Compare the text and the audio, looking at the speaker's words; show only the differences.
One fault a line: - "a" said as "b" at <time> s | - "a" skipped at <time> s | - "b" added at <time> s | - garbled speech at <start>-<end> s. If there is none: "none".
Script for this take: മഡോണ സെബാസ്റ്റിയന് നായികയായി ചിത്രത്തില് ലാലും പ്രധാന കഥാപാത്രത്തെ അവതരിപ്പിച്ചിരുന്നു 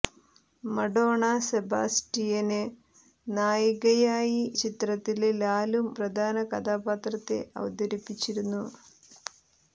none